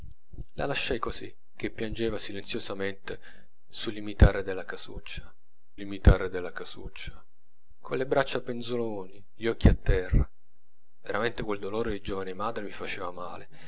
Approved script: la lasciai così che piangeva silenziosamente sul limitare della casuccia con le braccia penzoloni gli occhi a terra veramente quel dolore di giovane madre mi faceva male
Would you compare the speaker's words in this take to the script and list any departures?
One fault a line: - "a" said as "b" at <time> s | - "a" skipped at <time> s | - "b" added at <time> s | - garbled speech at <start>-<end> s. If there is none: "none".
- "limitare della casuccia" added at 5.8 s